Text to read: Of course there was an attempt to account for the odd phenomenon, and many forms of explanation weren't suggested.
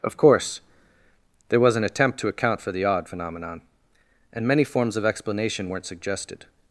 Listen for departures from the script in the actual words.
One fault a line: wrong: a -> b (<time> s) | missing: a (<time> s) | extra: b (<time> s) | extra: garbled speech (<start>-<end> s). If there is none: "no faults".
no faults